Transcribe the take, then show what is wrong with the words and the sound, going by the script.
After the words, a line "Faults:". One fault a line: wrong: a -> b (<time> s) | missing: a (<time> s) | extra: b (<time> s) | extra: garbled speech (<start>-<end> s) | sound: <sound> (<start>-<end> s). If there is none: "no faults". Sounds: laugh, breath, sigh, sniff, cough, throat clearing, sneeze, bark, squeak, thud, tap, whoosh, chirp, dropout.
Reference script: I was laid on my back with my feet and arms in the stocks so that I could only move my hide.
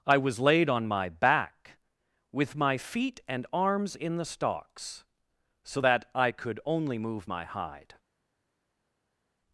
I was laid on my back with my feet and arms in the stocks so that I could only move my hide.
Faults:
no faults